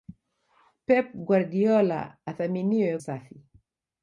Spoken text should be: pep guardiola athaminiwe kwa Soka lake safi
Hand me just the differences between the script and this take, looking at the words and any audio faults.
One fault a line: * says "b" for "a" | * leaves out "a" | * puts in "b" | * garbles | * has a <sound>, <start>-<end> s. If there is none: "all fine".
* leaves out "kwa Soka lake"